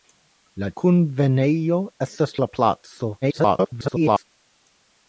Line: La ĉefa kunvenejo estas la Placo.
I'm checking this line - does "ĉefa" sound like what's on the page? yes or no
no